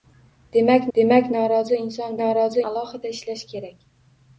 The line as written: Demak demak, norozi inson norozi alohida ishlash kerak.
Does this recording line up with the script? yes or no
yes